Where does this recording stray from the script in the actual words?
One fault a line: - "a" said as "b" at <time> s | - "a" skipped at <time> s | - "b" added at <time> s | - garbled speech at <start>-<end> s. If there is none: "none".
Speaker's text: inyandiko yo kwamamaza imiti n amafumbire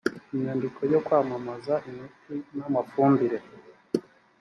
none